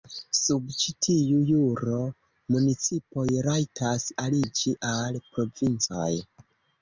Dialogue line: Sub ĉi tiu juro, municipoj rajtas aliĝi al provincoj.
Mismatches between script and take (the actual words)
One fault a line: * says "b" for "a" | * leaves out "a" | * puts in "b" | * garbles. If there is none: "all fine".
all fine